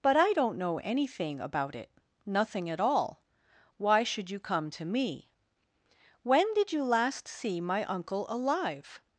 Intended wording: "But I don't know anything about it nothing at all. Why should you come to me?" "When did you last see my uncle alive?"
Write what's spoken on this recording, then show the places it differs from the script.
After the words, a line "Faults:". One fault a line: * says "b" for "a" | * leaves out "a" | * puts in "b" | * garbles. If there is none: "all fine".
"But I don't know anything about it nothing at all. Why should you come to me?" "When did you last see my uncle alive?"
Faults:
all fine